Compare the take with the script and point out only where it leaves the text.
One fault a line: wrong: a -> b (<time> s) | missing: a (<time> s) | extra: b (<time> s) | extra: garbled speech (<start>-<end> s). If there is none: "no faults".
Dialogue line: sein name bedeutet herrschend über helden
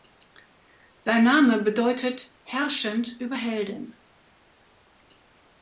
no faults